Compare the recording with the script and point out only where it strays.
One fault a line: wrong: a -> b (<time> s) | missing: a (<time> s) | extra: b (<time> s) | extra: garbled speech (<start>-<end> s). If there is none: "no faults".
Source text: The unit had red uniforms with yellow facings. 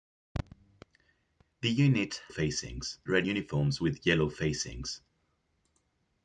wrong: had -> facings (2.3 s)